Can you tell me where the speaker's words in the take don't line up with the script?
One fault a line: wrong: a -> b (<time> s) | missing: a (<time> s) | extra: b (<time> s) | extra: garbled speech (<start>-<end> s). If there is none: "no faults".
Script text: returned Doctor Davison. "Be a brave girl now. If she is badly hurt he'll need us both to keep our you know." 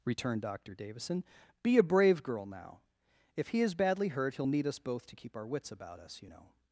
wrong: she -> he (3.5 s)
extra: wits about us (5.5 s)